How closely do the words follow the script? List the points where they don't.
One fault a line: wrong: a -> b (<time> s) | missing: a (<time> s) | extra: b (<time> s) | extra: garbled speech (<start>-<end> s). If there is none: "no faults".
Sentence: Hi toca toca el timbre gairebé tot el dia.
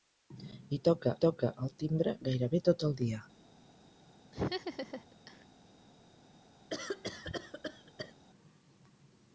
no faults